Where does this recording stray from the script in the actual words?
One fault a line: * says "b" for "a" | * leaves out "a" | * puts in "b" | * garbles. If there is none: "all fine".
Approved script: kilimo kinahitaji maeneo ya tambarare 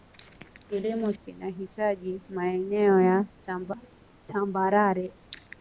all fine